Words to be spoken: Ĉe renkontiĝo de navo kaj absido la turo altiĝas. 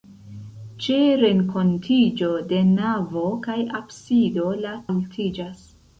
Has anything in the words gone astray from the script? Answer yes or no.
yes